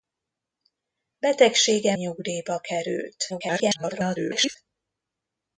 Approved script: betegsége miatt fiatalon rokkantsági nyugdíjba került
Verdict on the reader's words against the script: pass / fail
fail